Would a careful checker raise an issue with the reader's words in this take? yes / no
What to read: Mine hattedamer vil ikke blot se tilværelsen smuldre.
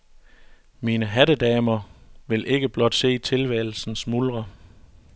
no